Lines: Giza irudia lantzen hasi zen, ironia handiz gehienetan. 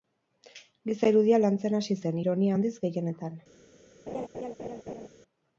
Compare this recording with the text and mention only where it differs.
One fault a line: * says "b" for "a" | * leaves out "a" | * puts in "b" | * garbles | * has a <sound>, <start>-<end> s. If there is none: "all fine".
* has a laugh, 4.1-5.1 s